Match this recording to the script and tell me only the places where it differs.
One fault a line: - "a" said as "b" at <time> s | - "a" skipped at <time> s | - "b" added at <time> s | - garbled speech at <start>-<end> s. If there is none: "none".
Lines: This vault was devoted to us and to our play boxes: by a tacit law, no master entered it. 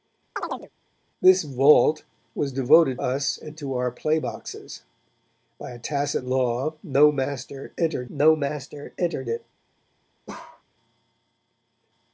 - "to" skipped at 3.0 s
- "no master entered" added at 8.1 s